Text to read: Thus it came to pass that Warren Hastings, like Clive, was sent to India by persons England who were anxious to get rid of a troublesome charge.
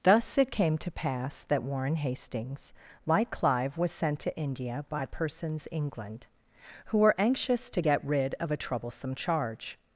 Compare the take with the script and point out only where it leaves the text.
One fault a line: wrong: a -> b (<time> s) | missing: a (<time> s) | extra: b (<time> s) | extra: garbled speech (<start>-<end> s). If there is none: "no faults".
no faults